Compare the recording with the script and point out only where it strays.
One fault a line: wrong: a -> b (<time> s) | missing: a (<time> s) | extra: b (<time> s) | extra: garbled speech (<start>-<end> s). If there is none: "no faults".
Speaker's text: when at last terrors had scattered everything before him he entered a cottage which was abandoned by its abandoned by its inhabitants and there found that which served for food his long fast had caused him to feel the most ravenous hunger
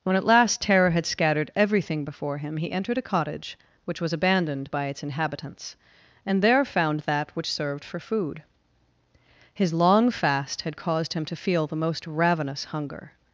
wrong: terrors -> terror (0.6 s)
missing: abandoned by its (5.0 s)